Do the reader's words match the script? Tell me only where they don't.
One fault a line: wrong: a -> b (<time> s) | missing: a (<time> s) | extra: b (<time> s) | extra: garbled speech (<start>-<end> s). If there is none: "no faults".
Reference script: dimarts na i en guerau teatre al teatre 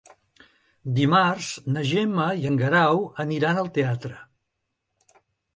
extra: gemma (1.9 s)
wrong: teatre -> aniran (3.3 s)